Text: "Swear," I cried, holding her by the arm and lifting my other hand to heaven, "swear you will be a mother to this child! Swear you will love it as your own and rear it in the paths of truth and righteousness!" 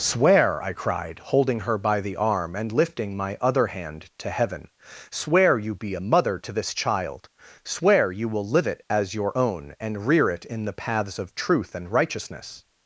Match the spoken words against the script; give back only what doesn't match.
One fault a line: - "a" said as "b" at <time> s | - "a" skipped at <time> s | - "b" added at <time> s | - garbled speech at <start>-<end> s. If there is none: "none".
- "will" skipped at 5.8 s
- "love" said as "live" at 8.5 s